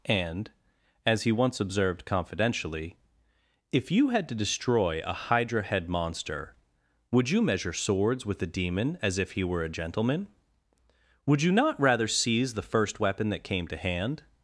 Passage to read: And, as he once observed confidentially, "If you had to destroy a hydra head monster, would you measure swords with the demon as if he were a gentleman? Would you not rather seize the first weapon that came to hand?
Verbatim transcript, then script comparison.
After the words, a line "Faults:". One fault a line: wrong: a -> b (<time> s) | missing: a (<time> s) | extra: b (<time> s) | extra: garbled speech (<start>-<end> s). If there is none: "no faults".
And, as he once observed confidentially, "If you had to destroy a hydra head monster, would you measure swords with the demon as if he were a gentleman? Would you not rather seize the first weapon that came to hand?
Faults:
no faults